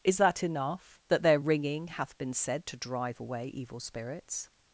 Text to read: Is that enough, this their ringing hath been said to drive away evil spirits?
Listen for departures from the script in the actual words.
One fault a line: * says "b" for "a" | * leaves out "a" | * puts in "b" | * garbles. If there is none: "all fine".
* says "that" for "this"